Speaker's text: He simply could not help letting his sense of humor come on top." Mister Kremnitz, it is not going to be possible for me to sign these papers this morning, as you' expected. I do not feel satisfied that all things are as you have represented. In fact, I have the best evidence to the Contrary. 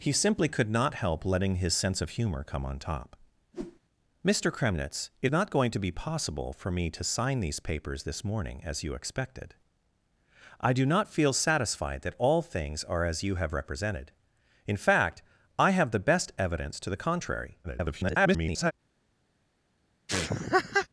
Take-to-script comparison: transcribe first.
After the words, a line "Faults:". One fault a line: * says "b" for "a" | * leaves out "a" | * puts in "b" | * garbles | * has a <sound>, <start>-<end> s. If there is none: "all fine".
He simply could not help letting his sense of humor come on top." Mister Kremnitz, it not going to be possible for me to sign these papers this morning, as you' expected. I do not feel satisfied that all things are as you have represented. In fact, I have the best evidence to the Contrary. [garbled]
Faults:
* has a whoosh, 3.5-3.8 s
* leaves out "is"
* garbles
* has a laugh, 20.1-20.9 s